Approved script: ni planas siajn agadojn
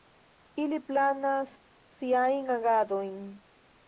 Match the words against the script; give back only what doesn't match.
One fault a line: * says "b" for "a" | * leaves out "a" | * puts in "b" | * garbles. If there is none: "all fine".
* says "ili" for "ni"